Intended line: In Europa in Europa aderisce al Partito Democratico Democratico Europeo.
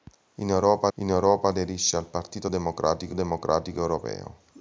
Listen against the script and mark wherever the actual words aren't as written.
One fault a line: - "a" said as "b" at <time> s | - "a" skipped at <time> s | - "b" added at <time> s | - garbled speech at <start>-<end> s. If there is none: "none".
none